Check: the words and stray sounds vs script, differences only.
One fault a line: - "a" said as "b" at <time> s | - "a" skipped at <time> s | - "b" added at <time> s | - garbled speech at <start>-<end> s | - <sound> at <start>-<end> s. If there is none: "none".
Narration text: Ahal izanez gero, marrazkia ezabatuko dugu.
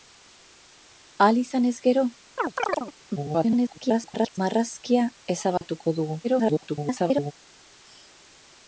- chirp at 2.4-2.9 s
- garbled speech at 3.2-4.4 s
- dropout at 5.6-5.6 s
- garbled speech at 6.2-7.3 s